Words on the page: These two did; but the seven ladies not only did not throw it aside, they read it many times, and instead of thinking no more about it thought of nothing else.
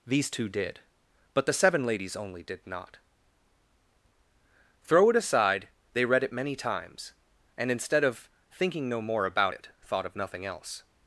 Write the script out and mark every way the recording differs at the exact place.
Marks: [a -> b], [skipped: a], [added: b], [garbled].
These two did; but the seven ladies [skipped: not] only did not throw it aside, they read it many times, and instead of thinking no more about it thought of nothing else.